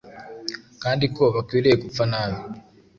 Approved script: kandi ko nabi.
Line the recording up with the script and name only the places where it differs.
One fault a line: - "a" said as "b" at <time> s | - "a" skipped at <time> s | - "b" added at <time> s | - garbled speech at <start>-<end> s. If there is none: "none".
- "bakwiriye gupfa" added at 1.4 s